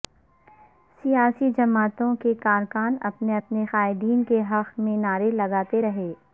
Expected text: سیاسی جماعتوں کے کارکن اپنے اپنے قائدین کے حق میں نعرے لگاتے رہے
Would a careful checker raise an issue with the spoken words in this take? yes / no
no